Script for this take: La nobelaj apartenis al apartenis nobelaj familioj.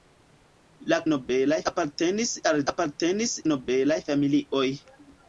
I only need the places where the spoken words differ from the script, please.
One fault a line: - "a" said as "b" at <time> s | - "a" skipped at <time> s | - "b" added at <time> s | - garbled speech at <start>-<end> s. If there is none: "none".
none